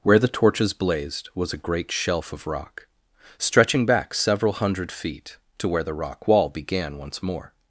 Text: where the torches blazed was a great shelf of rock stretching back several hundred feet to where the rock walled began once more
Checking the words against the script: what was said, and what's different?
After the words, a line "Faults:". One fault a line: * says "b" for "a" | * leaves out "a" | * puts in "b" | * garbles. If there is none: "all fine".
where the torches blazed was a great shelf of rock stretching back several hundred feet to where the rock wall began once more
Faults:
* says "wall" for "walled"